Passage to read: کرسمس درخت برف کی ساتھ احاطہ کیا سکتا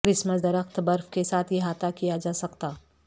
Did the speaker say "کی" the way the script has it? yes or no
no